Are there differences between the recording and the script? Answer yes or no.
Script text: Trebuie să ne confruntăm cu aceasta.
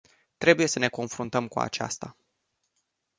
no